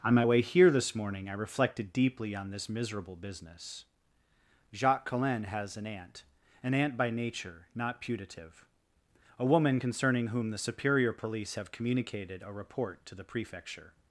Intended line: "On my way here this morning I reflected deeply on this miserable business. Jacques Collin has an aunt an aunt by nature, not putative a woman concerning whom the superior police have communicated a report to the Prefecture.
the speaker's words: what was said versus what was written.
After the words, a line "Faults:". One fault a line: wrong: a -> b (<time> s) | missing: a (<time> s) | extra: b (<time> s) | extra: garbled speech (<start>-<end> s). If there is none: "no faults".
"On my way here this morning I reflected deeply on this miserable business. Jacques Collin has an aunt an aunt by nature, not putative a woman concerning whom the superior police have communicated a report to the Prefecture.
Faults:
no faults